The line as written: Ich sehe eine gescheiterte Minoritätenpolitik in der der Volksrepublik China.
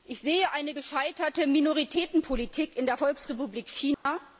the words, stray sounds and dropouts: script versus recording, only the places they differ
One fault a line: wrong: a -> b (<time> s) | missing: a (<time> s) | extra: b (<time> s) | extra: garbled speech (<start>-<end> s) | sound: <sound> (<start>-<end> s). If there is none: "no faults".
missing: der (3.0 s)
sound: dropout (3.9-4.1 s)